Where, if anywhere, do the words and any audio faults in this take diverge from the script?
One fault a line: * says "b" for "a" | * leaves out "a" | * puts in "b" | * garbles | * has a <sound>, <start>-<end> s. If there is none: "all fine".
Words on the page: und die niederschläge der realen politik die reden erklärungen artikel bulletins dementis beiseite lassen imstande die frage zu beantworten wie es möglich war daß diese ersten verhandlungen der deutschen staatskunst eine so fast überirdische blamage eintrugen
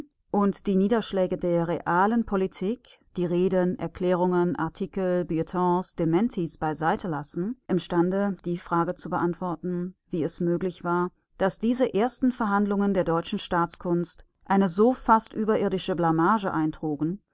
all fine